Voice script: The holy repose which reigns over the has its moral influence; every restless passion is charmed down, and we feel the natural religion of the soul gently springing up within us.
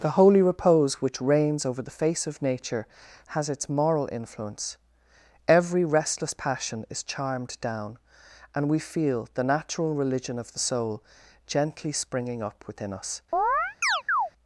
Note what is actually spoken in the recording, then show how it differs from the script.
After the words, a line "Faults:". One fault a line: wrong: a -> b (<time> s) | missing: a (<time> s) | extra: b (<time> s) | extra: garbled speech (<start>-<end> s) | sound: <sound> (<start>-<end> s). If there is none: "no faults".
The holy repose which reigns over the face of nature has its moral influence; every restless passion is charmed down, and we feel the natural religion of the soul gently springing up within us.
Faults:
extra: face of nature (2.0 s)
sound: chirp (13.3-14.3 s)